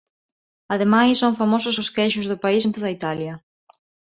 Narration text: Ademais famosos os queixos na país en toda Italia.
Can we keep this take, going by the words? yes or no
no